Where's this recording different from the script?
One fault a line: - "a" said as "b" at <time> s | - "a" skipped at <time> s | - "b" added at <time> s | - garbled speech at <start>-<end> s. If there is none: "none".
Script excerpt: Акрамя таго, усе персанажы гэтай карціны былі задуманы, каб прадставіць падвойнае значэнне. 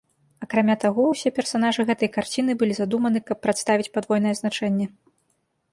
none